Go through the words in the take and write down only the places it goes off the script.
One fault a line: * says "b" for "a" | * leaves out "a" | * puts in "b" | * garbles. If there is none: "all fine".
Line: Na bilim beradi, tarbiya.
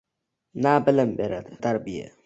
all fine